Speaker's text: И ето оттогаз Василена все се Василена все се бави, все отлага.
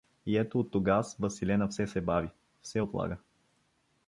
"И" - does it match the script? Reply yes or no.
yes